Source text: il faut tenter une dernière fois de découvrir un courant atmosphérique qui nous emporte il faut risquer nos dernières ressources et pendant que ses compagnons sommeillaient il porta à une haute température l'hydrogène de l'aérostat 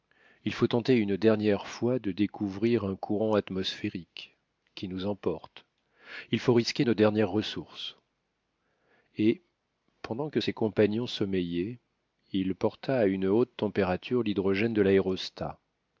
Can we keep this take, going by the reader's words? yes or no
yes